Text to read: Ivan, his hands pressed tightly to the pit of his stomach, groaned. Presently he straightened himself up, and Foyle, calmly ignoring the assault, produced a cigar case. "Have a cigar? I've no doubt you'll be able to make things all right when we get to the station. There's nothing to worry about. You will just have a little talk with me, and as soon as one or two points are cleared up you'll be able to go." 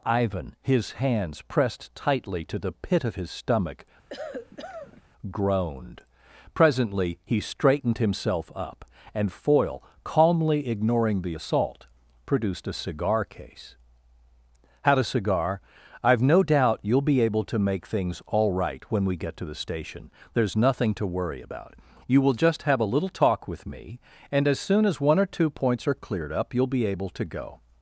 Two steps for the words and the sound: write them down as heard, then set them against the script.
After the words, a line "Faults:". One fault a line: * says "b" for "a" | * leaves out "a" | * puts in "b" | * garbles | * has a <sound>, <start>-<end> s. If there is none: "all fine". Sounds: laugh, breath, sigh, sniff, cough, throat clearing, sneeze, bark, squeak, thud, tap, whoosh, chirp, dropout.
Ivan, his hands pressed tightly to the pit of his stomach, groaned. Presently he straightened himself up, and Foyle, calmly ignoring the assault, produced a cigar case. "Had a cigar? I've no doubt you'll be able to make things all right when we get to the station. There's nothing to worry about. You will just have a little talk with me, and as soon as one or two points are cleared up you'll be able to go."
Faults:
* has a cough, 4.1-5.0 s
* says "Had" for "Have"